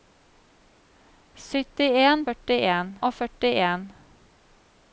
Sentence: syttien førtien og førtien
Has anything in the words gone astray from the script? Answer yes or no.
no